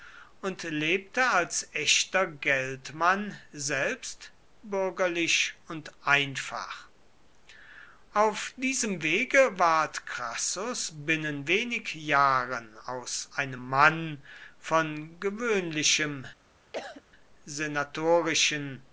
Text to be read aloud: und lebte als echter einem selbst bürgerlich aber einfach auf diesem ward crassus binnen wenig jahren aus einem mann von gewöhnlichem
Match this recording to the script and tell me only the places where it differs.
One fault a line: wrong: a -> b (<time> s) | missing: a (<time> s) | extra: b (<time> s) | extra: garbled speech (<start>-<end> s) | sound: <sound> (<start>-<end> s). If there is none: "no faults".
wrong: einem -> geldmann (2.2 s)
wrong: aber -> und (5.7 s)
extra: wege (9.0 s)
sound: cough (16.7-17.0 s)